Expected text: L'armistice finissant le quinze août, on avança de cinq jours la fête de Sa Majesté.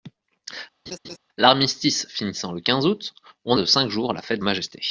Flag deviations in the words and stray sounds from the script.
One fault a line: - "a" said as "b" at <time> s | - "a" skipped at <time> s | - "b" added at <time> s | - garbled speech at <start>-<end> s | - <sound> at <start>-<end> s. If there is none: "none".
- laugh at 0.9-1.2 s
- "avança" skipped at 3.6 s
- "de Sa" skipped at 4.4 s